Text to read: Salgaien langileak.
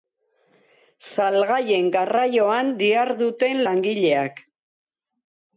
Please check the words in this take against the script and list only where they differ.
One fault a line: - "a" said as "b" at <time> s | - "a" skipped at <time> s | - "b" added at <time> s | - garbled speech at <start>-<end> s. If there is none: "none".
- "garraioan diharduten" added at 2.0 s